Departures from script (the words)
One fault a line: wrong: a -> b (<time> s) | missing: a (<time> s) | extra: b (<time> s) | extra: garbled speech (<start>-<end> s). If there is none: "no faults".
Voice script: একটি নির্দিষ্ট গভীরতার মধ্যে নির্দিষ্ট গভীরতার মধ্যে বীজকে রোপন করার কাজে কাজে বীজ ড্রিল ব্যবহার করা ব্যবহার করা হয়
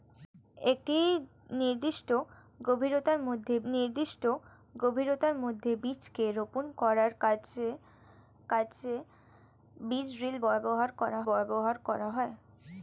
no faults